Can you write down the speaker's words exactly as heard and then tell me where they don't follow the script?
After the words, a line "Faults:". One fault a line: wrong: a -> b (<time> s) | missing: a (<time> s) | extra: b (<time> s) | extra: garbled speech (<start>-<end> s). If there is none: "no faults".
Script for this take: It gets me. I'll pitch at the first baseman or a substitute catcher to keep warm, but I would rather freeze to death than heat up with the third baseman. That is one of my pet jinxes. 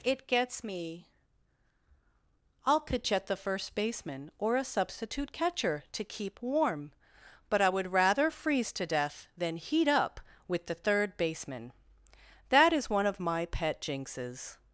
It gets me. I'll pitch at the first baseman or a substitute catcher to keep warm, but I would rather freeze to death than heat up with the third baseman. That is one of my pet jinxes.
Faults:
no faults